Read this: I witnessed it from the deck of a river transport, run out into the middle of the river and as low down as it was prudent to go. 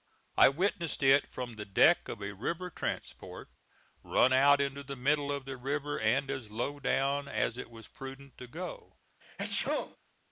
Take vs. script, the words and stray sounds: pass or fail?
fail